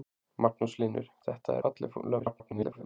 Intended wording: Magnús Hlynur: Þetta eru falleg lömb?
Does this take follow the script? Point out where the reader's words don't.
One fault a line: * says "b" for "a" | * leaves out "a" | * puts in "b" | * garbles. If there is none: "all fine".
* leaves out "eru"
* garbles